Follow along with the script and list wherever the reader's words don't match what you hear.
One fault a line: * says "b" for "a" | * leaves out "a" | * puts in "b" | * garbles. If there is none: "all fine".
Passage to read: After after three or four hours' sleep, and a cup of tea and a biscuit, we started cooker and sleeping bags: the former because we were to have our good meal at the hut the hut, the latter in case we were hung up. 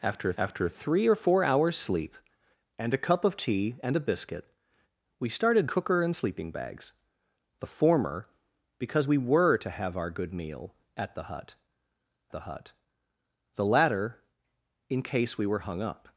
all fine